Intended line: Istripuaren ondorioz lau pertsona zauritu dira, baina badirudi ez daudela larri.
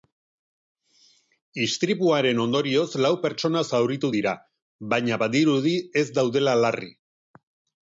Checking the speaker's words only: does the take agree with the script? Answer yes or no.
yes